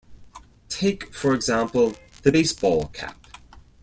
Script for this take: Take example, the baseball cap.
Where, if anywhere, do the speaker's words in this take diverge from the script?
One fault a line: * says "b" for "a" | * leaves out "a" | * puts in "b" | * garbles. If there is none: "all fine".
* puts in "for"